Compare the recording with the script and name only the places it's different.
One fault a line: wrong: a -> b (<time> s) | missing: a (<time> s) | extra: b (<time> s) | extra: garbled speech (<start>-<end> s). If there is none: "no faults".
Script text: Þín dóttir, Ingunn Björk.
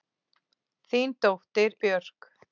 missing: Ingunn (1.8 s)